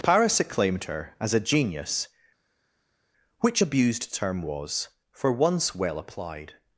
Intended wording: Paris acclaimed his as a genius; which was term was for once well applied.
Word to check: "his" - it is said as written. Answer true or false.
false